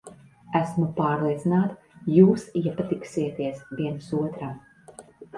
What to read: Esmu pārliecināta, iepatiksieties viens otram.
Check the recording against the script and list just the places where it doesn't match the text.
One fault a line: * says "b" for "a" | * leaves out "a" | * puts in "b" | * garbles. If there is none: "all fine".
* puts in "jūs"